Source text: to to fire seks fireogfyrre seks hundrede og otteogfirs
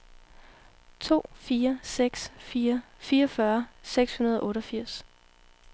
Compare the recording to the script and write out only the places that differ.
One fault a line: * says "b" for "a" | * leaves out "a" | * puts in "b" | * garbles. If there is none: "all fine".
* leaves out "to"
* puts in "fire"